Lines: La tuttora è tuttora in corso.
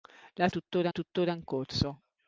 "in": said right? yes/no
yes